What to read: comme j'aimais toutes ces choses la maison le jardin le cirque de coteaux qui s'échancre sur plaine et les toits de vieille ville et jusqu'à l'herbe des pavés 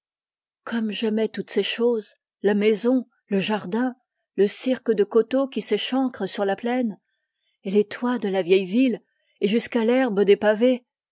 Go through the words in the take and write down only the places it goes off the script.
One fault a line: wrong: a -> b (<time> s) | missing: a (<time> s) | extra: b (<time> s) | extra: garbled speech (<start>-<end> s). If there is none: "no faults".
extra: la (6.4 s)
extra: la (8.3 s)